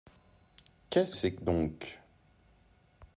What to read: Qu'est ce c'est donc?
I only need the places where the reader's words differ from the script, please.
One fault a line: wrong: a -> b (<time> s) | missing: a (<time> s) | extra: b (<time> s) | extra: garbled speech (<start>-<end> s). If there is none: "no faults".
no faults